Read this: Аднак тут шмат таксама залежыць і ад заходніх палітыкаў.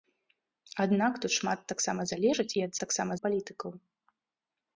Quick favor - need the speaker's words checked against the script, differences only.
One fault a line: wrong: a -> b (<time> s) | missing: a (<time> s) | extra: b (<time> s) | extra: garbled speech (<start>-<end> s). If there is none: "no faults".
wrong: заходніх -> таксама (2.8 s)